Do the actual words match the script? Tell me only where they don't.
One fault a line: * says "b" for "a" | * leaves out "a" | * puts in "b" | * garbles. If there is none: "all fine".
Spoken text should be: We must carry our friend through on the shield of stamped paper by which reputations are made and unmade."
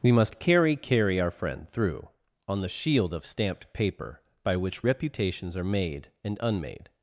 * puts in "carry"